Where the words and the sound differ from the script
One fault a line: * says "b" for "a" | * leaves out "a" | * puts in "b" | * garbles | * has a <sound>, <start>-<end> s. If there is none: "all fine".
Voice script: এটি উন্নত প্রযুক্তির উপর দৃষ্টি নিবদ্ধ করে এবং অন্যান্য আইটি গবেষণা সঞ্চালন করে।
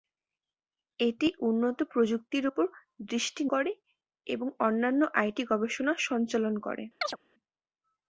* leaves out "নিবদ্ধ"
* has a chirp, 7.0-7.2 s